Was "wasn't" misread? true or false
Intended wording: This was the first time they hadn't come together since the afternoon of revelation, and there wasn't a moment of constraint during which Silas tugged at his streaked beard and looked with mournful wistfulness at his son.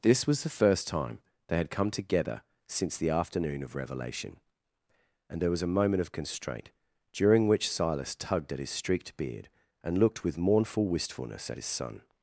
true